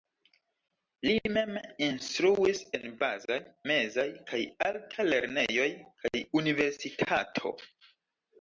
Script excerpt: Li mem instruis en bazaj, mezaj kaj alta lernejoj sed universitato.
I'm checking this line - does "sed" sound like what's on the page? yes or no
no